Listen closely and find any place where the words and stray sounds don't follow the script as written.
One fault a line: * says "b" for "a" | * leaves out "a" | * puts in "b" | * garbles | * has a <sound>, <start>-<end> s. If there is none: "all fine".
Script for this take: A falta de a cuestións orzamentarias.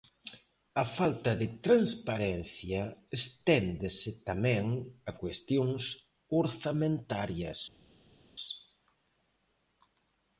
* puts in "transparencia esténdese tamén"